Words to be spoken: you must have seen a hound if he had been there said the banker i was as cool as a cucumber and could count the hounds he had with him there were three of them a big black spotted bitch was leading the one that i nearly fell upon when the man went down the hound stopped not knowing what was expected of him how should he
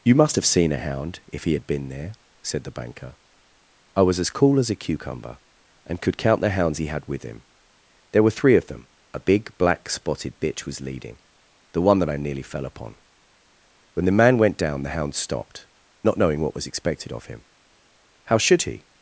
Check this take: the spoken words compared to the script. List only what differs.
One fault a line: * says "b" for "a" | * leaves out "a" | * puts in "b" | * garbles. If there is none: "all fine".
all fine